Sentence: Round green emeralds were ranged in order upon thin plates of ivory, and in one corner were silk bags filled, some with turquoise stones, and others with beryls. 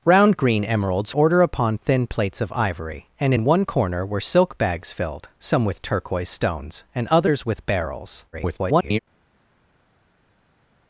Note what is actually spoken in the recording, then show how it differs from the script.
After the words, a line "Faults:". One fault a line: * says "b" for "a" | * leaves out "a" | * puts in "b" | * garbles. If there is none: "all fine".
Round green emeralds order upon thin plates of ivory, and in one corner were silk bags filled, some with turquoise stones, and others with beryls. [garbled]
Faults:
* leaves out "were ranged in"
* garbles